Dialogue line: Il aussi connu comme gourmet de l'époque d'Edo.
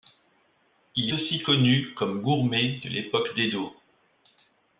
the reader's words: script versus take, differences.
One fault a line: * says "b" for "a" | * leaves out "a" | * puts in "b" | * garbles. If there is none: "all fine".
all fine